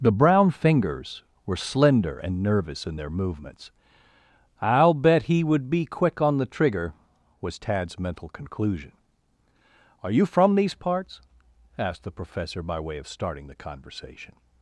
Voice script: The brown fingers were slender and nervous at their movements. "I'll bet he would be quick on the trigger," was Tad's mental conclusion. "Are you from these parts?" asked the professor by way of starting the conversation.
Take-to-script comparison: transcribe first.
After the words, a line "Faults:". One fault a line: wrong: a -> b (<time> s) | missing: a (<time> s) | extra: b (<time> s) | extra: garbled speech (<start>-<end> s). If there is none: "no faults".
The brown fingers were slender and nervous in their movements. "I'll bet he would be quick on the trigger," was Tad's mental conclusion. "Are you from these parts?" asked the professor by way of starting the conversation.
Faults:
wrong: at -> in (2.9 s)